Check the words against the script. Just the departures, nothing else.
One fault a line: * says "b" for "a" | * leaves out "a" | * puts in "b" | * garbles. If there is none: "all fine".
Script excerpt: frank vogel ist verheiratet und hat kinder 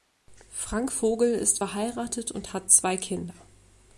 * puts in "zwei"